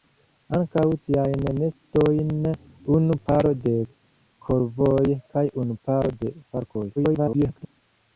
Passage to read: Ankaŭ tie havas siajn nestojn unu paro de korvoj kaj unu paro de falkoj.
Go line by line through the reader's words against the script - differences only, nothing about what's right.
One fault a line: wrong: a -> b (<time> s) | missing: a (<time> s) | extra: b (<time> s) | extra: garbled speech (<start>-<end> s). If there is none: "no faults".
missing: tie havas (0.8 s)
extra: garbled speech (7.0-7.8 s)